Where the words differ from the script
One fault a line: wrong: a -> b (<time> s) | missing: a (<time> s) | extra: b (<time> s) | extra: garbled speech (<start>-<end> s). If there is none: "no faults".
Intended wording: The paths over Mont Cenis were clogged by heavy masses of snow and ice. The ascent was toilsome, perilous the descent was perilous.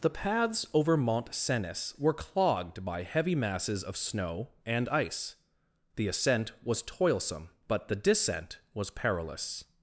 wrong: perilous -> but (7.7 s)